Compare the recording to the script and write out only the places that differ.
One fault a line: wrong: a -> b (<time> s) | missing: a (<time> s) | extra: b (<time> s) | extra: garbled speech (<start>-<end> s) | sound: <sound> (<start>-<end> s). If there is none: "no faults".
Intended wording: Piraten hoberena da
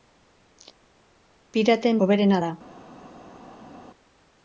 no faults